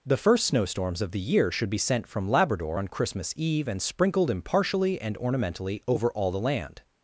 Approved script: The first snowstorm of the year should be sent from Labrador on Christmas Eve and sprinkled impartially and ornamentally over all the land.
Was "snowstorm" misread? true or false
true